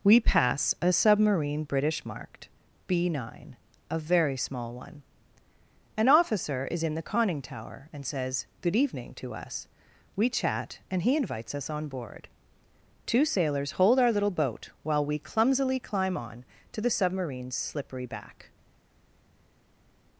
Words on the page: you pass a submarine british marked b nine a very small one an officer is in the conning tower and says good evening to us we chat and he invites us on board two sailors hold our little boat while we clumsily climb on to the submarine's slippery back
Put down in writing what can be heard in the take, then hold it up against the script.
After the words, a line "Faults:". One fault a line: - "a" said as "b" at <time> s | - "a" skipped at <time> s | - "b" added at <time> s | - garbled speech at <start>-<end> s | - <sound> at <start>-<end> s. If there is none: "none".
we pass a submarine british marked b nine a very small one an officer is in the conning tower and says good evening to us we chat and he invites us on board two sailors hold our little boat while we clumsily climb on to the submarine's slippery back
Faults:
- "you" said as "we" at 0.0 s